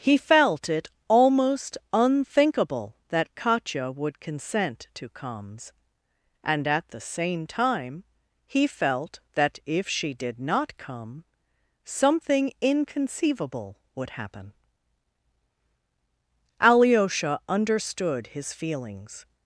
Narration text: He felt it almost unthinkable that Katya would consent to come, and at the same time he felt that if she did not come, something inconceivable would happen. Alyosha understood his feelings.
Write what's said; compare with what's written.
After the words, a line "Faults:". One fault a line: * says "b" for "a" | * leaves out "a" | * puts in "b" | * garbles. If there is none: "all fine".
He felt it almost unthinkable that Katya would consent to comes, and at the same time he felt that if she did not come, something inconceivable would happen. Alyosha understood his feelings.
Faults:
* says "comes" for "come"